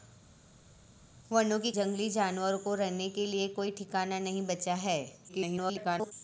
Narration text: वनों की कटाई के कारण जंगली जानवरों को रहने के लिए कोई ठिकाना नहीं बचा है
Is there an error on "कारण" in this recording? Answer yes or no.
yes